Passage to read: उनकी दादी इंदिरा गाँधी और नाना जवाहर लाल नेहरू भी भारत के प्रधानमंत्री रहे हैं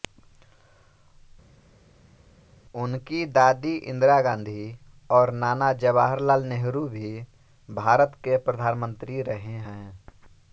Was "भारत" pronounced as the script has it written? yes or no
yes